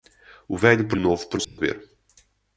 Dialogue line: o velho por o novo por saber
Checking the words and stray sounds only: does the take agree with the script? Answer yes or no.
no